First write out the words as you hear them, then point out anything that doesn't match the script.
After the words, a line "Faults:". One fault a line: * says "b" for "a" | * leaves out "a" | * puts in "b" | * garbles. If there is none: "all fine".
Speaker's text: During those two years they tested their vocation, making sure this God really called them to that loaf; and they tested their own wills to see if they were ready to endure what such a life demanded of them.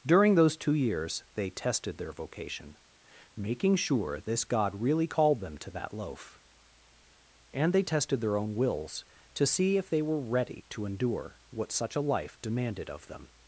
During those two years they tested their vocation, making sure this God really called them to that loaf; and they tested their own wills to see if they were ready to endure what such a life demanded of them.
Faults:
all fine